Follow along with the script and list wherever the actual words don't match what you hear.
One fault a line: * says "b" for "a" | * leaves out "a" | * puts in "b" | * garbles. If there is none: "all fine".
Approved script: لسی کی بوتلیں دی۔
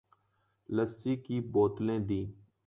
all fine